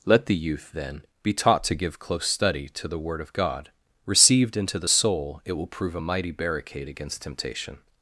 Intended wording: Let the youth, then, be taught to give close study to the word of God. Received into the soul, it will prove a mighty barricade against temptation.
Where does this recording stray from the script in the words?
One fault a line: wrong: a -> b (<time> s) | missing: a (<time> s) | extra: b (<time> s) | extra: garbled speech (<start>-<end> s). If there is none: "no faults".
no faults